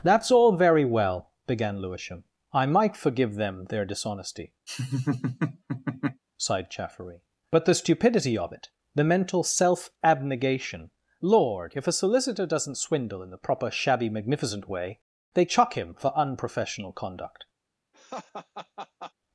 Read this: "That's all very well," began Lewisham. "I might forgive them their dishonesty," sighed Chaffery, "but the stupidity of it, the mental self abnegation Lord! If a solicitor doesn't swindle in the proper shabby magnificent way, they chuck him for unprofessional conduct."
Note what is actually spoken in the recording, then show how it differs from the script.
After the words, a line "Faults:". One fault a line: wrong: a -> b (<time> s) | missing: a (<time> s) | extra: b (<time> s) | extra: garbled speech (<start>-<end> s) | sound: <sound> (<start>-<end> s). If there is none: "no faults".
"That's all very well," began Lewisham. "I might forgive them their dishonesty," sighed Chaffery, "but the stupidity of it, the mental self abnegation Lord! If a solicitor doesn't swindle in the proper shabby magnificent way, they chuck him for unprofessional conduct."
Faults:
sound: laugh (4.7-6.2 s)
sound: laugh (17.9-19.1 s)